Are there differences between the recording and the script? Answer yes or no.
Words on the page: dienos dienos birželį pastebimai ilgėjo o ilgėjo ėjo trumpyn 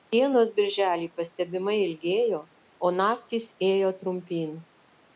yes